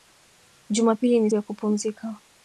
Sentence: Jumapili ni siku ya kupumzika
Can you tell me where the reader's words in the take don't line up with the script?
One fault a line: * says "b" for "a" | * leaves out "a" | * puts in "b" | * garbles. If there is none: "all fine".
* leaves out "siku"